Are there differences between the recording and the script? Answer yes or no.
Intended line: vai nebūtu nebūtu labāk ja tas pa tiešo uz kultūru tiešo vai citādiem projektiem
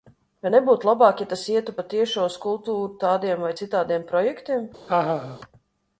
yes